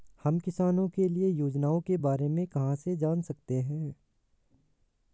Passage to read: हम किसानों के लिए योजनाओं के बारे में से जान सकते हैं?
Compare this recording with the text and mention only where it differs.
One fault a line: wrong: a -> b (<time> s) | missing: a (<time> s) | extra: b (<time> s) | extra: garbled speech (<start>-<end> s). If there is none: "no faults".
extra: कहाँ (2.5 s)